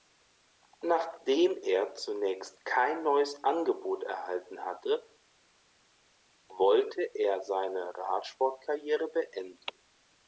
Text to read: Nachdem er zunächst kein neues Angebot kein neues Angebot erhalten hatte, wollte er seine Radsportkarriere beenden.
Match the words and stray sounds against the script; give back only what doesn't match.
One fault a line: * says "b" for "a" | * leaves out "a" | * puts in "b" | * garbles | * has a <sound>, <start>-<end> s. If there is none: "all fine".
* leaves out "kein neues Angebot"